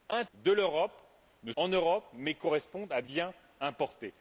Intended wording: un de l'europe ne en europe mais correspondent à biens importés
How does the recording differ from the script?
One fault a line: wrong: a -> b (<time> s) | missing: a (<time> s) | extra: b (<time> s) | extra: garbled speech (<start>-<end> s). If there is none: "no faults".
no faults